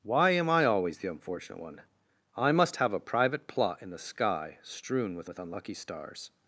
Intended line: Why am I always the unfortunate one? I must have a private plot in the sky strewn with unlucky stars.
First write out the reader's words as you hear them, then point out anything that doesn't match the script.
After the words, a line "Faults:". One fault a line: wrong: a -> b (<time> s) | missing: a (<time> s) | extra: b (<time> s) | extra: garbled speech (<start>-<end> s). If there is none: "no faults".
Why am I always the unfortunate one? I must have a private plot in the sky strewn with with unlucky stars.
Faults:
extra: with (5.2 s)